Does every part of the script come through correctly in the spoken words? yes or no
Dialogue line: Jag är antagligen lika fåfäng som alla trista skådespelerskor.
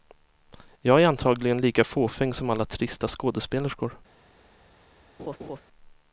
yes